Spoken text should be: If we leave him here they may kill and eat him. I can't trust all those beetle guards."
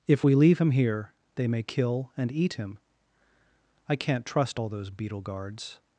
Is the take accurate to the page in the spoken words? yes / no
yes